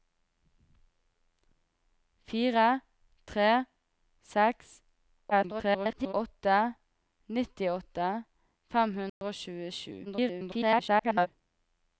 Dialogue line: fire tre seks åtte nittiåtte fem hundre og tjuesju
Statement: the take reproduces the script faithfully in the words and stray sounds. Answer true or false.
false